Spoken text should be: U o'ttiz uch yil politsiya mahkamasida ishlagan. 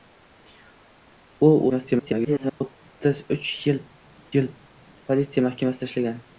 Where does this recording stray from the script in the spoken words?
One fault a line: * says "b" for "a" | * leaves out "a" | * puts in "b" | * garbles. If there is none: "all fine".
* garbles
* puts in "yil"